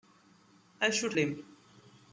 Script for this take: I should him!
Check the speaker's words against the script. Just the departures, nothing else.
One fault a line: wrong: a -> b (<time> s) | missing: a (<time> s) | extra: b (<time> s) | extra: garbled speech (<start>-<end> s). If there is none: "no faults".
no faults